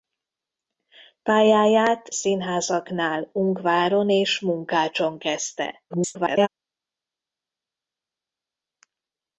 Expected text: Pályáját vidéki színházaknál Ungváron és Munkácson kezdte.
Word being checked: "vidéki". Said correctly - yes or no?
no